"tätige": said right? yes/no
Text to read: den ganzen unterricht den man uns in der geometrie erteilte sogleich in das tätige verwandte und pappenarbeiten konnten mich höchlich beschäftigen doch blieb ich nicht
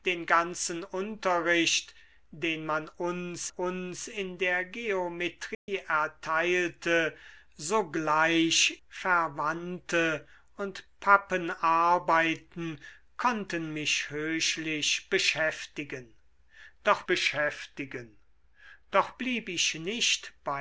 no